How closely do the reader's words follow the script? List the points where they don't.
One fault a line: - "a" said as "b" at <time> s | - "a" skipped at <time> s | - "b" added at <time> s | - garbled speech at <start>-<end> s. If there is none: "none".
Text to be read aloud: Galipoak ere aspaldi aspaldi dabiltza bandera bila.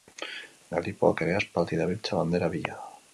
- "aspaldi" skipped at 1.8 s